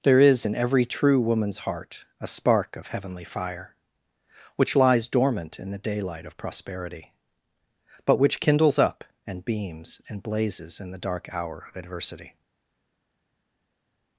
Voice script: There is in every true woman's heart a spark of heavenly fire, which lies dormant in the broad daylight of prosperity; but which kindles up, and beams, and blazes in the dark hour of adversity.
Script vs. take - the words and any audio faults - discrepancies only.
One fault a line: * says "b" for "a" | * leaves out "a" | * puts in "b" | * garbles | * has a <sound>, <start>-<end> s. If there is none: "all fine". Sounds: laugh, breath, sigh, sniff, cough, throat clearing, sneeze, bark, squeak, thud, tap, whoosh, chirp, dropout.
* leaves out "broad"